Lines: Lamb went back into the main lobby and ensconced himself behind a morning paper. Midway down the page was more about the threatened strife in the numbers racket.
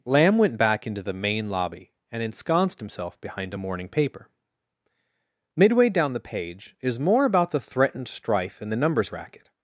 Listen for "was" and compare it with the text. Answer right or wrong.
wrong